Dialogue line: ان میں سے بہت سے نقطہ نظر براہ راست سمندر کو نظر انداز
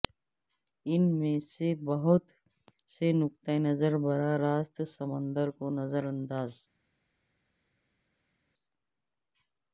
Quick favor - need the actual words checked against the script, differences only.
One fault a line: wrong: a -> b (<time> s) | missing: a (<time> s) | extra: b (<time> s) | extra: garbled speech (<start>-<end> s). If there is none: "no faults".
no faults